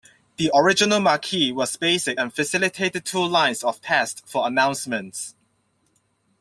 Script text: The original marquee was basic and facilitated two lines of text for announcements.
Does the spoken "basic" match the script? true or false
true